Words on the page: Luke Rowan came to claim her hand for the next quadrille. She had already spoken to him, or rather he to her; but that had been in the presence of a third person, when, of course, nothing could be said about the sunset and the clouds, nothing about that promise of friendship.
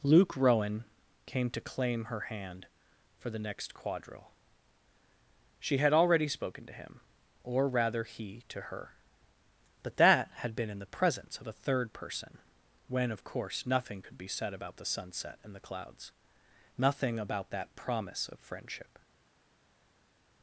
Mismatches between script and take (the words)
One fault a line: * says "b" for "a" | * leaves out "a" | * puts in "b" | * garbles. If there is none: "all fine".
all fine